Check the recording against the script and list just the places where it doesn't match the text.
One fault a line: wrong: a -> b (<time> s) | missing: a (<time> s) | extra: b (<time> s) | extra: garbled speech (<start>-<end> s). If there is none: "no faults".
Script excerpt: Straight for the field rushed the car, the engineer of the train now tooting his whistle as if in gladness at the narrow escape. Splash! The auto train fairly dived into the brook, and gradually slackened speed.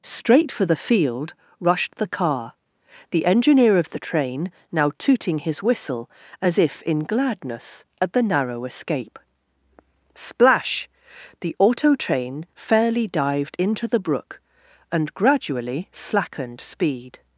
no faults